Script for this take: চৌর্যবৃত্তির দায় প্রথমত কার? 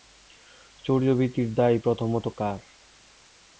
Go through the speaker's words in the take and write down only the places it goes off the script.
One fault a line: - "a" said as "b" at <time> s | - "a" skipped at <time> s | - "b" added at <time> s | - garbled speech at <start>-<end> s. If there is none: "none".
none